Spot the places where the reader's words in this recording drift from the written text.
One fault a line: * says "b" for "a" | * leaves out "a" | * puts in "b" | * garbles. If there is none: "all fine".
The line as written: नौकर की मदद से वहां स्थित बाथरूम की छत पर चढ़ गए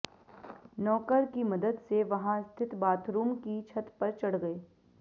all fine